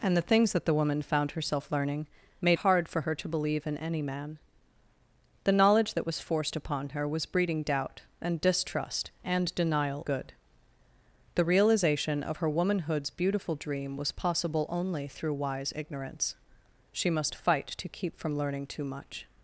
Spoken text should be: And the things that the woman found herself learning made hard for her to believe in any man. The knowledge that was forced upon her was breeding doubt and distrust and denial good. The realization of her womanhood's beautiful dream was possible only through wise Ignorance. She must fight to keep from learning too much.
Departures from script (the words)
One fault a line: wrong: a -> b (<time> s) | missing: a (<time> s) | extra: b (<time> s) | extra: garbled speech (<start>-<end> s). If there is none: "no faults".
no faults